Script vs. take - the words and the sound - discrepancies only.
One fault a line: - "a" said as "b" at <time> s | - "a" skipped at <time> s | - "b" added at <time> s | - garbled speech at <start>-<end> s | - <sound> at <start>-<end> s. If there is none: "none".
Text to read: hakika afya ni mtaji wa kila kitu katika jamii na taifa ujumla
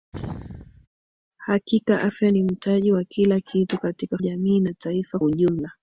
- sneeze at 0.1-0.9 s